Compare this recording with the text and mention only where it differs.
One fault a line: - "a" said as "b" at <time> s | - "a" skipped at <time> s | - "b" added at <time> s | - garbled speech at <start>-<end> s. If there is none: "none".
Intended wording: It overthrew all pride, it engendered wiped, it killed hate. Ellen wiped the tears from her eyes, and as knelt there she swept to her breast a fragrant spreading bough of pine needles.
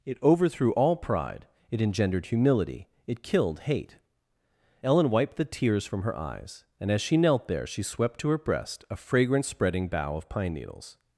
- "wiped" said as "humility" at 2.3 s
- "she" added at 7.0 s